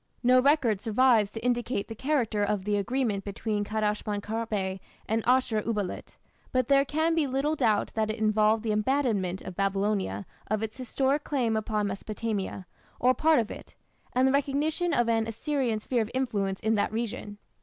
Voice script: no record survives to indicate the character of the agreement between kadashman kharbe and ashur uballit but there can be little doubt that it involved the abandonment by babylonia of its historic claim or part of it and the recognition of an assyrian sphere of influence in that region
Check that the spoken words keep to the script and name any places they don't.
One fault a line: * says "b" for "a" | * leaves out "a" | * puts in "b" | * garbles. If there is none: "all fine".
* puts in "upon mesopotamia"